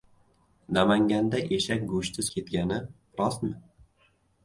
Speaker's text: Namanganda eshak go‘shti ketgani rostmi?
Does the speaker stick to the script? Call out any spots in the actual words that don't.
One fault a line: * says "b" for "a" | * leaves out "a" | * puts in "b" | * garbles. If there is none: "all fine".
all fine